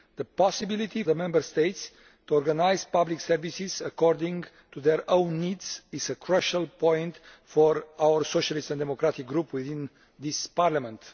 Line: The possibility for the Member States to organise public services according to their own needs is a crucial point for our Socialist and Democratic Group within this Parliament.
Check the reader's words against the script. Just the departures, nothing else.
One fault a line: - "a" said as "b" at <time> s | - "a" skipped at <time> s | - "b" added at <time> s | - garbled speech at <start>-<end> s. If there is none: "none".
- "for" skipped at 1.0 s